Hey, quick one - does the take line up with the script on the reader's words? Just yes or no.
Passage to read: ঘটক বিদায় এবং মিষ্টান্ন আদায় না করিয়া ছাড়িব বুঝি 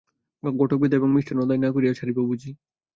yes